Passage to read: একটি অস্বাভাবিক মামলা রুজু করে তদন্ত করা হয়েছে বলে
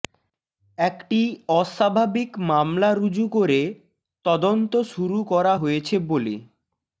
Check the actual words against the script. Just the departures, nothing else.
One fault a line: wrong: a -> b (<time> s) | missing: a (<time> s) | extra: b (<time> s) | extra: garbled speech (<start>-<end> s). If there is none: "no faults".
extra: শুরু (4.9 s)